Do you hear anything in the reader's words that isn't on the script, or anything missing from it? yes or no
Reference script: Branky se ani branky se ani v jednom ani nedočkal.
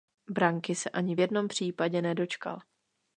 yes